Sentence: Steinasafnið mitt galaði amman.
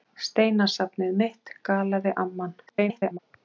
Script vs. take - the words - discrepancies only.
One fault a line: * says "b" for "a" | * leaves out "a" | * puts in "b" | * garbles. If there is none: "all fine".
* garbles